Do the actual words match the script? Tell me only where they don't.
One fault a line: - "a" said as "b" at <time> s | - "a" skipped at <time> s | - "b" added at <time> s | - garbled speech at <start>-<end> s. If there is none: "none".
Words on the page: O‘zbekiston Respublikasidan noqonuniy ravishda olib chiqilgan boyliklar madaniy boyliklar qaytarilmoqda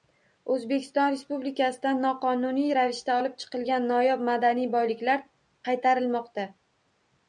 - "boyliklar" said as "noyob" at 3.9 s